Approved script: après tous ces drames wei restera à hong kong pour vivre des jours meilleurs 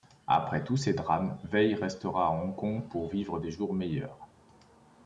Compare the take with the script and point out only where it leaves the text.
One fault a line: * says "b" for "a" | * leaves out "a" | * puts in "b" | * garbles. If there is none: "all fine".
all fine